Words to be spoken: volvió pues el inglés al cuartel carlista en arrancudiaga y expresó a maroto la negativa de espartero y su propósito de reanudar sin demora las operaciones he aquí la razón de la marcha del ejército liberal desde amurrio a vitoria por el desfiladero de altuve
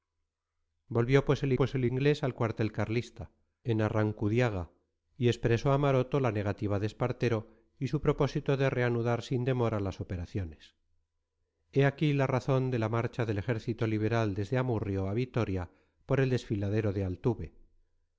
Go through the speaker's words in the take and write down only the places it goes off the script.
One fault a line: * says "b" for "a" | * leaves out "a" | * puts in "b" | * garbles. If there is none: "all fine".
* puts in "pues el"